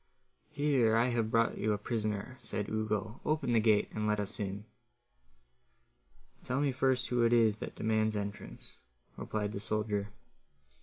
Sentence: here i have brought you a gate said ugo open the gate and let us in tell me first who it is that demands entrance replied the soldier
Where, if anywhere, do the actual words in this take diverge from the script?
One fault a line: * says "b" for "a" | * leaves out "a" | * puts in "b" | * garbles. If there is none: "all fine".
* says "prisoner" for "gate"